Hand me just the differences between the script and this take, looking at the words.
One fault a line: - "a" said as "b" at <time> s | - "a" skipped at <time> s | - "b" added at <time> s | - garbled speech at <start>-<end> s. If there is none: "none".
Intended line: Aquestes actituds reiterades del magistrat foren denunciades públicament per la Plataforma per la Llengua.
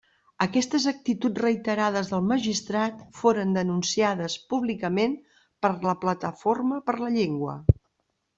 none